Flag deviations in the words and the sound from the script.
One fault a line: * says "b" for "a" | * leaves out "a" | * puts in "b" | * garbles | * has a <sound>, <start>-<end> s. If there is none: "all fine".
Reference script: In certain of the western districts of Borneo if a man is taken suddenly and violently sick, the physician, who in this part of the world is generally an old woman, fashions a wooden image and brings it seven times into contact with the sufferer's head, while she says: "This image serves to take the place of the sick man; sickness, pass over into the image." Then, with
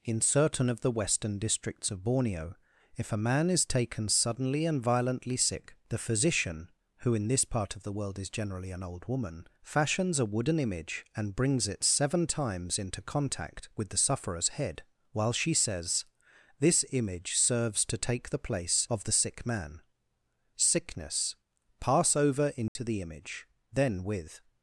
* has a dropout, 22.7-22.8 s